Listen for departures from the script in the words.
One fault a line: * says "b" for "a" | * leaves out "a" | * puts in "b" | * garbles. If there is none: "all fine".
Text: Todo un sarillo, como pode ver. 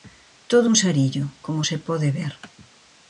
* puts in "se"